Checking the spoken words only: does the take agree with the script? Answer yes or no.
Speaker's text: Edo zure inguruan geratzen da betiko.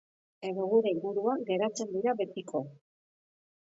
no